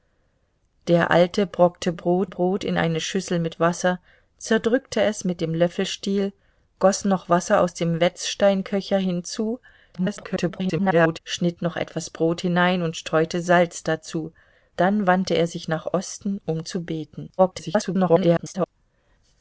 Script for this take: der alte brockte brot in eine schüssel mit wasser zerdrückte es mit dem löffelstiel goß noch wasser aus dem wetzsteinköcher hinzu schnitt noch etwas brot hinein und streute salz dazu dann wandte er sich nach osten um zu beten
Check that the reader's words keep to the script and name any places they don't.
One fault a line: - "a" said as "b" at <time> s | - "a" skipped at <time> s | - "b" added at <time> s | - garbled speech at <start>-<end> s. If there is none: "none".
- "brot" added at 2.3 s
- garbled speech at 9.9-11.2 s
- garbled speech at 17.4-18.7 s